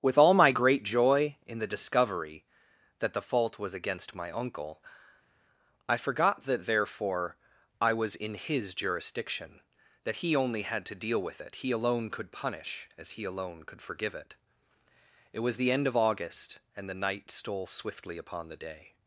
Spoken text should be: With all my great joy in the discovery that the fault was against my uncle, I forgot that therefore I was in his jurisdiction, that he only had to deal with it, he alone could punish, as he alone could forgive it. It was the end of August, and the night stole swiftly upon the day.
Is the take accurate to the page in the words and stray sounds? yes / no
yes